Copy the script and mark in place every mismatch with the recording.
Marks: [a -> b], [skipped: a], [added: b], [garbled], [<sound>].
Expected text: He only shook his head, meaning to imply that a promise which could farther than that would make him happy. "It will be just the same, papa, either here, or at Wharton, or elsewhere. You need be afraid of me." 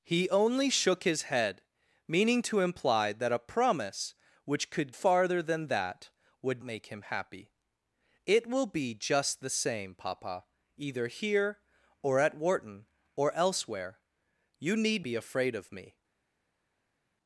He only shook his head, meaning to imply that a promise which could farther than that would make him happy. "It will be just the same, papa, either here, or at Wharton, or elsewhere. You need be afraid of me."